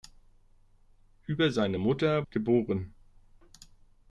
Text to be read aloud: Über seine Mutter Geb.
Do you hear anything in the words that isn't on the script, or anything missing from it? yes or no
no